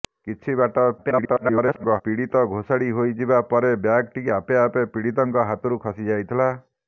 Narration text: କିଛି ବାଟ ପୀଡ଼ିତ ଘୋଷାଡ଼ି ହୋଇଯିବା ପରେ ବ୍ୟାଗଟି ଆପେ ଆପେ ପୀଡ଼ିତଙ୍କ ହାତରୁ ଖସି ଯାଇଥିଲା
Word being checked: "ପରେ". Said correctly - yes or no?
yes